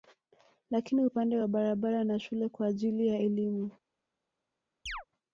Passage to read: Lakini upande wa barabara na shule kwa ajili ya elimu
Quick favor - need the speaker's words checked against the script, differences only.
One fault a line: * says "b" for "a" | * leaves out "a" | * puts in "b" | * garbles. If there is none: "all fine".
all fine